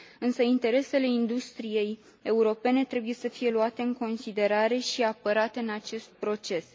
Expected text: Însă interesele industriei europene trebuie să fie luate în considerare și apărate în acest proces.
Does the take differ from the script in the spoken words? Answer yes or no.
no